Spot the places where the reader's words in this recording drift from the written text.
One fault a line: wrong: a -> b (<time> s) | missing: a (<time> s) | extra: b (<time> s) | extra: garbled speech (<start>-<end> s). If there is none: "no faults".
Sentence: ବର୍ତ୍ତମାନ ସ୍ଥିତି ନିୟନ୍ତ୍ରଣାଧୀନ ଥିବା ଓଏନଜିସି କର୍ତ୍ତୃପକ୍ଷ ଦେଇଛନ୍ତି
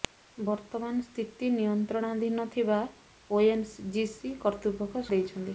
no faults